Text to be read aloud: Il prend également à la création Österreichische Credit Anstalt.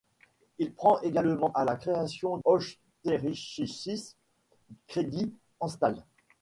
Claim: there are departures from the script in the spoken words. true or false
false